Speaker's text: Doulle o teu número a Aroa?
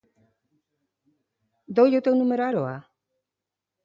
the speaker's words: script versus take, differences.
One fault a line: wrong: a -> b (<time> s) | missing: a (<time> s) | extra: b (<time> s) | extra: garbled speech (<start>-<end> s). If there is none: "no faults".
no faults